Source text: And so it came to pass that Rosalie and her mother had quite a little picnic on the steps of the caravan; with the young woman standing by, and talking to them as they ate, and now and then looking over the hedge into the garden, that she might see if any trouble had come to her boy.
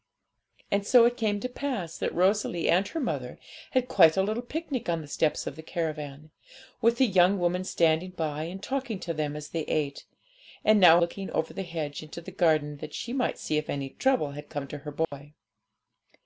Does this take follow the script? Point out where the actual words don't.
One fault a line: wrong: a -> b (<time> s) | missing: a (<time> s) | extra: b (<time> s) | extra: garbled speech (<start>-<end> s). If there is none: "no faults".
missing: and then (11.0 s)